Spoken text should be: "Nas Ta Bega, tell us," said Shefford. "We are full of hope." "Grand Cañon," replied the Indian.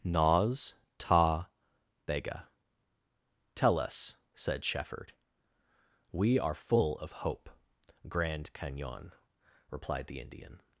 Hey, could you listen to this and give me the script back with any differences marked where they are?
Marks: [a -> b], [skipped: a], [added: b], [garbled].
"Nas Ta Bega, tell us," said Shefford. "We are full of hope." "Grand Cañon," replied the Indian.